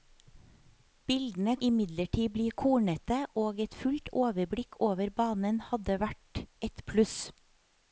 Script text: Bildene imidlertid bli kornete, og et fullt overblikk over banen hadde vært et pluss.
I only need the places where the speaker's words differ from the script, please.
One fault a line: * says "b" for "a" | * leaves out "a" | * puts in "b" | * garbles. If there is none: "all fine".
all fine